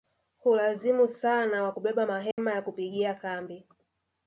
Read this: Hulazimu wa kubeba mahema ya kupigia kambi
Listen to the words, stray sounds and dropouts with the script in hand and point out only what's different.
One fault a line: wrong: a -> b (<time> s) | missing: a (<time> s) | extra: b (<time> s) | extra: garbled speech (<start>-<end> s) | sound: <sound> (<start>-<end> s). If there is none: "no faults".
extra: sana (1.1 s)
sound: dropout (2.3-2.4 s)